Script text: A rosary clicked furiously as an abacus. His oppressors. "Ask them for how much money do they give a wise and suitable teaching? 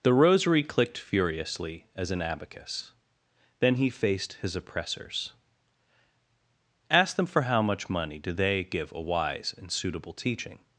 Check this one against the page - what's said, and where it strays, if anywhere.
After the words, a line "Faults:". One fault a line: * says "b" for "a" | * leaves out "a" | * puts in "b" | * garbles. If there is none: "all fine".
The rosary clicked furiously as an abacus. Then he faced his oppressors. "Ask them for how much money do they give a wise and suitable teaching?
Faults:
* says "The" for "A"
* puts in "Then he faced"